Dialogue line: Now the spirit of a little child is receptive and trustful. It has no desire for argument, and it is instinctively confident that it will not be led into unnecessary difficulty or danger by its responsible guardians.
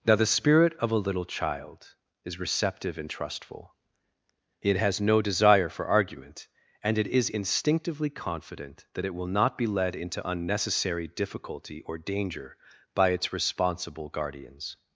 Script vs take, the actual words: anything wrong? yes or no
no